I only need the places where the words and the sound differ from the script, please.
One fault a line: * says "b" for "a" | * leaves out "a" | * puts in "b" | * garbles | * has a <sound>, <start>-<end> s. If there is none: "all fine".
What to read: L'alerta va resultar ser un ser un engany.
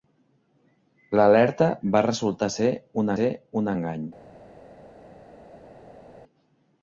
all fine